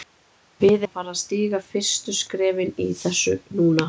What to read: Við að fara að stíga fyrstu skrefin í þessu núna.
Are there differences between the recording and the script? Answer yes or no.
no